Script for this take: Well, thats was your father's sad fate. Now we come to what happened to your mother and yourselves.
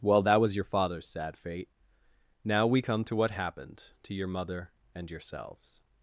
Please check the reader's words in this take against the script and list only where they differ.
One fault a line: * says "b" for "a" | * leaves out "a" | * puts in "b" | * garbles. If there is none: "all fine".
* says "that" for "thats"